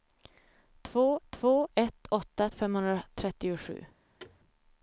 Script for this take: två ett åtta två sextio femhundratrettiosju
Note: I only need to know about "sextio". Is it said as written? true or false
false